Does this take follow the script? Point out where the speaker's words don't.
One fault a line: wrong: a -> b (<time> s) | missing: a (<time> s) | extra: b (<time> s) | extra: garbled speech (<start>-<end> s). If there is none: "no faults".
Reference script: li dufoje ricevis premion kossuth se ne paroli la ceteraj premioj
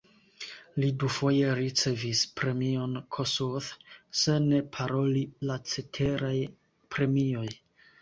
no faults